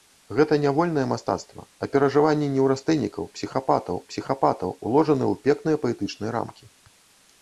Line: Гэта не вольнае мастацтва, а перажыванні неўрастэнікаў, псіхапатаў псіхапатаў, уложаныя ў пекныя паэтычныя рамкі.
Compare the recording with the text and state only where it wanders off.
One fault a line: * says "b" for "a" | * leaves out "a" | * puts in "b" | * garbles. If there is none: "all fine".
all fine